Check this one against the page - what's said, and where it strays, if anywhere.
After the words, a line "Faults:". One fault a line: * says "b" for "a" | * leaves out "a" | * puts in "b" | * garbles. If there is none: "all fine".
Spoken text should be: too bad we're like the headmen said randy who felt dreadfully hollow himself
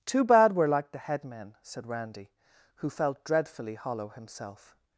too bad we're like the headmen said randy who felt dreadfully hollow himself
Faults:
all fine